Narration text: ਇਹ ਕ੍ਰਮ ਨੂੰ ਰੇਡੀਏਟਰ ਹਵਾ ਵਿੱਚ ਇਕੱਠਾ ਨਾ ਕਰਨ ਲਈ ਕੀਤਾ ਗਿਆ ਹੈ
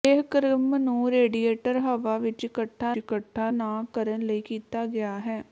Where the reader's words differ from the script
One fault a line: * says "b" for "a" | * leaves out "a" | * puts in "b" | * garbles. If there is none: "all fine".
* puts in "ਇਕੱਠਾ"